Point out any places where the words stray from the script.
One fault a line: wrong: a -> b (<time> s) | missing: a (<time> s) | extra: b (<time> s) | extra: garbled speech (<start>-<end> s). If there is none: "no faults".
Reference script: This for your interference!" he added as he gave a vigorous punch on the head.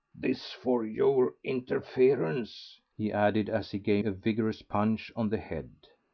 no faults